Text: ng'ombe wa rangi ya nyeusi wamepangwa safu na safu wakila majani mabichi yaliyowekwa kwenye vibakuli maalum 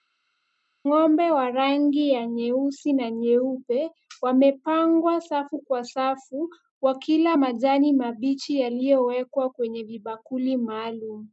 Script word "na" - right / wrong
wrong